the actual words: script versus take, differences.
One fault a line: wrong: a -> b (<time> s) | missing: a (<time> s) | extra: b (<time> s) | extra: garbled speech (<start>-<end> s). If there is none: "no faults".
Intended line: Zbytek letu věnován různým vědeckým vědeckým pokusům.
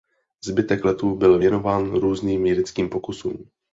extra: byl (1.2 s)
missing: vědeckým (2.9 s)